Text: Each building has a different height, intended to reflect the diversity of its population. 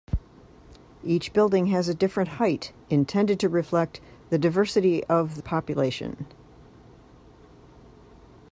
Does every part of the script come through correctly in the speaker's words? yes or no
no